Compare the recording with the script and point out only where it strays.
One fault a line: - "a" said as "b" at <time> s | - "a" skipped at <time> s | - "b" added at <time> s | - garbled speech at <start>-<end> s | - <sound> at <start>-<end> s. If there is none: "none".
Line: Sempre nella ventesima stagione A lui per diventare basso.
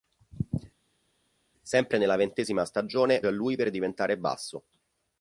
none